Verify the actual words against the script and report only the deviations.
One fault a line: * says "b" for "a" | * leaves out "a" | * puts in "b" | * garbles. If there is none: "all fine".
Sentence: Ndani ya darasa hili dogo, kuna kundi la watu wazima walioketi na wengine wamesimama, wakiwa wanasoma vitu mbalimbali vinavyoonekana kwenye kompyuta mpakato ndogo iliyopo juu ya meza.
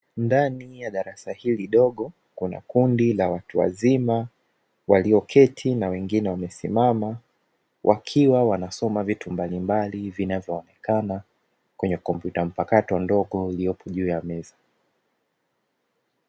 all fine